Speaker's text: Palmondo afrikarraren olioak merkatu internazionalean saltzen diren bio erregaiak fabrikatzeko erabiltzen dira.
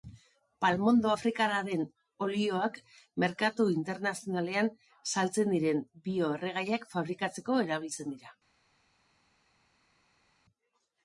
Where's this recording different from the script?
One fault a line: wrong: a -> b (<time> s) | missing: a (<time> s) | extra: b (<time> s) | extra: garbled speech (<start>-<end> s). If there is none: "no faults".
no faults